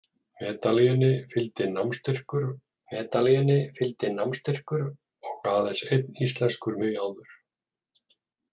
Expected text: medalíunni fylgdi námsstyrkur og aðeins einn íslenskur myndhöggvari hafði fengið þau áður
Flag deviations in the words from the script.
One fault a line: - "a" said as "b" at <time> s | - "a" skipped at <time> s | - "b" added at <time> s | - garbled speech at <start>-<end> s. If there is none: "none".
- "medalíunni fylgdi námsstyrkur" added at 2.9 s
- "myndhöggvari hafði fengið" skipped at 6.8 s